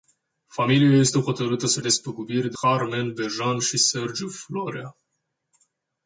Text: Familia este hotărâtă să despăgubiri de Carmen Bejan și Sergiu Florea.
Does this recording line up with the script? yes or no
yes